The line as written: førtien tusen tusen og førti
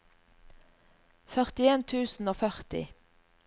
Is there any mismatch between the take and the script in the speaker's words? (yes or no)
yes